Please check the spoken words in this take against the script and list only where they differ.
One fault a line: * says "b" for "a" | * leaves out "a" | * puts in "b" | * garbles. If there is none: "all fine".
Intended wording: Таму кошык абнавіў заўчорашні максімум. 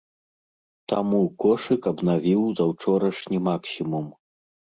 all fine